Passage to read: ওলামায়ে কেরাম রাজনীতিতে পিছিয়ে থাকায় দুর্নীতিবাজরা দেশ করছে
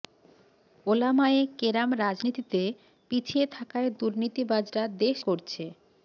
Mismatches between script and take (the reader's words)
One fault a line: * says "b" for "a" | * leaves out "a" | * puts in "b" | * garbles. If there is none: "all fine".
all fine